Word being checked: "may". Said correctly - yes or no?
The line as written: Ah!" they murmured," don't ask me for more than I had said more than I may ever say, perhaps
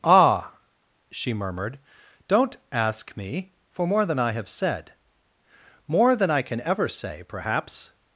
no